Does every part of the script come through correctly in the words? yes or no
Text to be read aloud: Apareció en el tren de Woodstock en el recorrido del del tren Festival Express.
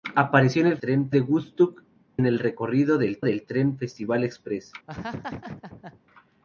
yes